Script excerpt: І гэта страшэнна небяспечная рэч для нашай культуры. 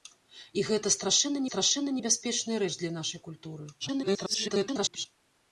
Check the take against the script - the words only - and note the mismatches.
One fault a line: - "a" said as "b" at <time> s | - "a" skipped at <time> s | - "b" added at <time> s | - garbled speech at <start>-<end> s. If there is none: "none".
- "страшэнна" added at 1.5 s
- garbled speech at 3.8-5.1 s